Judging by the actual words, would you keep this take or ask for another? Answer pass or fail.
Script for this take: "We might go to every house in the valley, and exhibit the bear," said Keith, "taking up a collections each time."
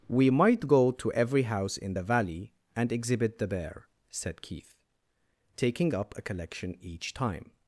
fail